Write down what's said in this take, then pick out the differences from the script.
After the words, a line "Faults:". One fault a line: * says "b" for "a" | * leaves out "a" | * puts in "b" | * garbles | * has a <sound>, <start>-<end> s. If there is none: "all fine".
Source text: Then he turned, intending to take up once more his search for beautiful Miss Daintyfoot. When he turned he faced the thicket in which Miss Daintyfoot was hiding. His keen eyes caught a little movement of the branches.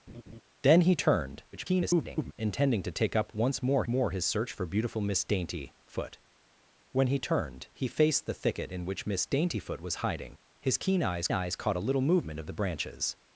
Then he turned, [garbled] intending to take up once more more his search for beautiful Miss Daintyfoot. When he turned he faced the thicket in which Miss Daintyfoot was hiding. His keen eyes eyes caught a little movement of the branches.
Faults:
* has a laugh, 0.1-0.4 s
* garbles
* puts in "more"
* puts in "eyes"